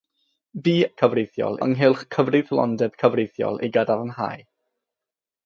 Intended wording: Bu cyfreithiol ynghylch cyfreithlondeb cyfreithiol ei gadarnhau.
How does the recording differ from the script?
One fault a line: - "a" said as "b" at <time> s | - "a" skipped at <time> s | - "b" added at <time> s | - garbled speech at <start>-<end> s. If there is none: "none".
none